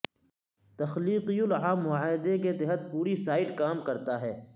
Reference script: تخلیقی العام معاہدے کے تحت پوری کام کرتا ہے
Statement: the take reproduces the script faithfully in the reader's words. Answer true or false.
false